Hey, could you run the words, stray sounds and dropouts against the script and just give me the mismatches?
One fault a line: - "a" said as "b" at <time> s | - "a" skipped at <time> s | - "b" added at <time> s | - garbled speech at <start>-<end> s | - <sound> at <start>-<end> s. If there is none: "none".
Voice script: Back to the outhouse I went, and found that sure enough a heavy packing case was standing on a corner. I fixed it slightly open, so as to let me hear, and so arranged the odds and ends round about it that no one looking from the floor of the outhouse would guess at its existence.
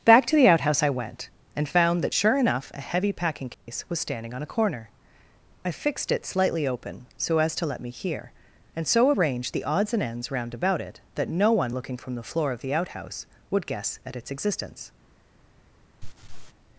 - dropout at 3.5-3.7 s
- laugh at 16.0-16.5 s